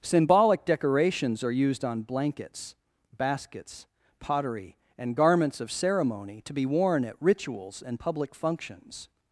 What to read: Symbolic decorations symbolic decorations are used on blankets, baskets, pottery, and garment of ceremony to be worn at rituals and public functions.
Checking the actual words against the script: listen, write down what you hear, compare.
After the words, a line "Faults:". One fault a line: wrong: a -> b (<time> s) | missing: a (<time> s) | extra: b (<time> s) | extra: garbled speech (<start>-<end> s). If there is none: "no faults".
Symbolic decorations are used on blankets, baskets, pottery, and garments of ceremony to be worn at rituals and public functions.
Faults:
missing: symbolic decorations (1.4 s)
wrong: garment -> garments (5.1 s)